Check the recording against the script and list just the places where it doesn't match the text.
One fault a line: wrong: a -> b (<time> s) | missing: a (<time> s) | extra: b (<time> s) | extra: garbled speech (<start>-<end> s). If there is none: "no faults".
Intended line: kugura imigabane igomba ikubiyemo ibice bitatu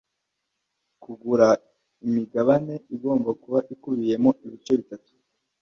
extra: kuba (3.4 s)